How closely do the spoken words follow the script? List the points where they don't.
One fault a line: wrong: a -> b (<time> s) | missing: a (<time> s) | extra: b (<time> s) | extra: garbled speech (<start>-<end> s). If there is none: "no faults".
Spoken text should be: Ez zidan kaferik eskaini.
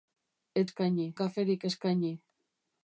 wrong: zidan -> eskaini (0.7 s)